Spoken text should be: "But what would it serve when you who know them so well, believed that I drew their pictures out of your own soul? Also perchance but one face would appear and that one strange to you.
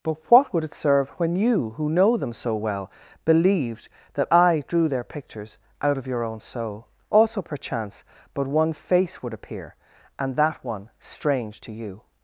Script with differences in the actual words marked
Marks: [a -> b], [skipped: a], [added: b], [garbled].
"But what would it serve when you who know them so well, believed that I drew their pictures out of your own soul? Also perchance but one face would appear and that one strange to you.